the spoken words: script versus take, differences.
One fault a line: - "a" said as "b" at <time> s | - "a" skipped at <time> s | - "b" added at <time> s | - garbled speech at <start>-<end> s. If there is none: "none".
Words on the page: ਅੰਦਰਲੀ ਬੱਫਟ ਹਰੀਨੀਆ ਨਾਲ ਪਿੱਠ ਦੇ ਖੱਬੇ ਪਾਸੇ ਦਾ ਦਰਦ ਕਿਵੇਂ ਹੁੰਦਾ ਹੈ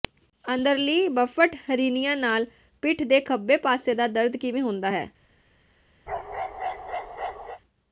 none